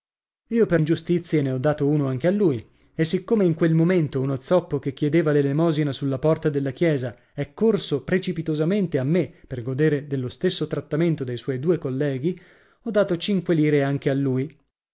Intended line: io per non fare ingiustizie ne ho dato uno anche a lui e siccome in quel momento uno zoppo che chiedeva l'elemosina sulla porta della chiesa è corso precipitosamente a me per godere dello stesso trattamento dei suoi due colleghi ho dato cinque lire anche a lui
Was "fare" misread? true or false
true